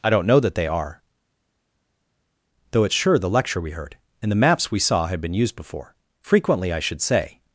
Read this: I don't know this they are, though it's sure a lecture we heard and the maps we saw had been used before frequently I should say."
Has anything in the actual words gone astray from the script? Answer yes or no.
yes